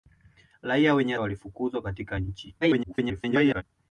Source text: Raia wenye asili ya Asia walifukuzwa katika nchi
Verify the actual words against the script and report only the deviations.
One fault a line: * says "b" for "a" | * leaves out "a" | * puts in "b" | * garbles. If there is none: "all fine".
* leaves out "asili ya Asia"
* garbles